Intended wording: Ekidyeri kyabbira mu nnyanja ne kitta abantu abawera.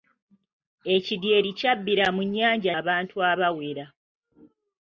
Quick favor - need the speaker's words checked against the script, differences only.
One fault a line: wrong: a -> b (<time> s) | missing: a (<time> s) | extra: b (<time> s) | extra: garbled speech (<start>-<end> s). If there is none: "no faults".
missing: ne kitta (2.7 s)